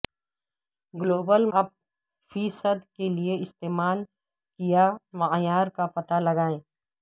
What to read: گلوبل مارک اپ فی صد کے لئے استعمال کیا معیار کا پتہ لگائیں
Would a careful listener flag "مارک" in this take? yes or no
yes